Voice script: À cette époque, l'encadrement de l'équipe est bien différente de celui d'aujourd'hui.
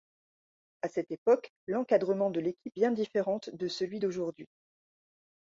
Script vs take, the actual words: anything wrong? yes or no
yes